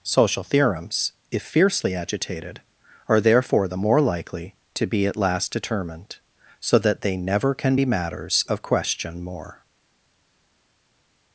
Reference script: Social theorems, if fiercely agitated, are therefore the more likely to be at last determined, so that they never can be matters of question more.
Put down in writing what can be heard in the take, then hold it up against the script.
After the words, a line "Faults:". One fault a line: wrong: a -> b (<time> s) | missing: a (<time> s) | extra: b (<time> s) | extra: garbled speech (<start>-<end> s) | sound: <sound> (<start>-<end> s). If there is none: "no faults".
Social theorems, if fiercely agitated, are therefore the more likely to be at last determined, so that they never can be matters of question more.
Faults:
no faults